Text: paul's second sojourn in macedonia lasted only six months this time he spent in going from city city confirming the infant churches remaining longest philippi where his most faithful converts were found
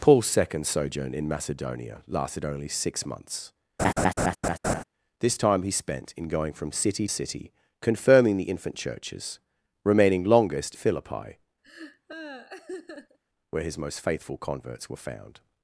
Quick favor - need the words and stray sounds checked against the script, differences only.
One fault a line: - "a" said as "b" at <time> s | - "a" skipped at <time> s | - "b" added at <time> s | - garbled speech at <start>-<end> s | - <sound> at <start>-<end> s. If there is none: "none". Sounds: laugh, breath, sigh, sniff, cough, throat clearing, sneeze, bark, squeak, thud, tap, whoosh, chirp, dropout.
- laugh at 3.8-4.8 s
- laugh at 11.6-13.2 s